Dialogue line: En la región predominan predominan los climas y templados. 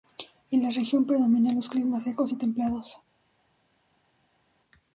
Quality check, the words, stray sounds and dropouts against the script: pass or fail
fail